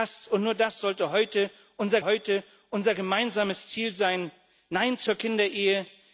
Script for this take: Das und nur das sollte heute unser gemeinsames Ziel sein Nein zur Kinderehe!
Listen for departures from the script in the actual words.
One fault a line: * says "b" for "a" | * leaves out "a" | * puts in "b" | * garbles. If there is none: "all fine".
* puts in "heute unser"